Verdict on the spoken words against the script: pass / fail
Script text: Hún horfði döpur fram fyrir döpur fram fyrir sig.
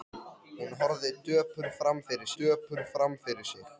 pass